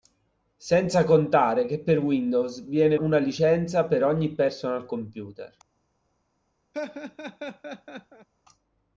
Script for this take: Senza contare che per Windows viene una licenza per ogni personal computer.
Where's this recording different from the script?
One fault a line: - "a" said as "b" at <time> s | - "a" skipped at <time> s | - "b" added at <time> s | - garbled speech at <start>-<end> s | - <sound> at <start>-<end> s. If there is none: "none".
- laugh at 6.7-8.3 s